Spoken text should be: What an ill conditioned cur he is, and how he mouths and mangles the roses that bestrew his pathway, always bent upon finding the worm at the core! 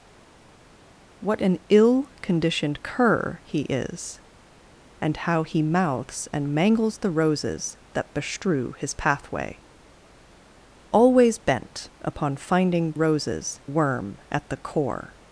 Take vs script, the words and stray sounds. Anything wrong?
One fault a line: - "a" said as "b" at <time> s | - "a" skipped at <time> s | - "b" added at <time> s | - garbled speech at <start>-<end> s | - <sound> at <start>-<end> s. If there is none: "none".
- "the" said as "roses" at 12.9 s